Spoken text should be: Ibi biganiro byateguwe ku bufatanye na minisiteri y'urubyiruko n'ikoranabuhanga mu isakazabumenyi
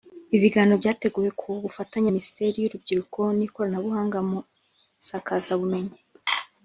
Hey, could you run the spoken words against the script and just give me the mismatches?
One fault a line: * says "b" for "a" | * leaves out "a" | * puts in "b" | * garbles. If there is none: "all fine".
* leaves out "na"